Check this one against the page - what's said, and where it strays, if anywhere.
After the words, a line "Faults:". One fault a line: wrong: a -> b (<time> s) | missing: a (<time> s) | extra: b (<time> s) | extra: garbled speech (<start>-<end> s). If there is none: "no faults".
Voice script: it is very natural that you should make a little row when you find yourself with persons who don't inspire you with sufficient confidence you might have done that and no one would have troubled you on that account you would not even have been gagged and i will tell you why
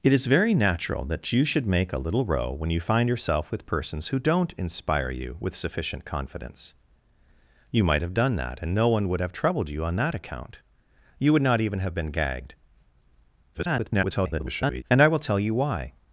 it is very natural that you should make a little row when you find yourself with persons who don't inspire you with sufficient confidence you might have done that and no one would have troubled you on that account you would not even have been gagged [garbled] and i will tell you why
Faults:
extra: garbled speech (13.5-14.8 s)